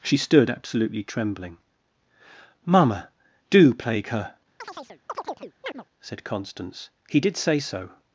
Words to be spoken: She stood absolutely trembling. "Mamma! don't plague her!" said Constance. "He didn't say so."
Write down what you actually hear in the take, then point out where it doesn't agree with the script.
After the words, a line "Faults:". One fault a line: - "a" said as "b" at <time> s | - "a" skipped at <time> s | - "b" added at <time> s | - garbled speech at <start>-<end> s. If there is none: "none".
She stood absolutely trembling. "Mamma! do plague her!" said Constance. "He did say so."
Faults:
- "don't" said as "do" at 3.5 s
- "didn't" said as "did" at 7.2 s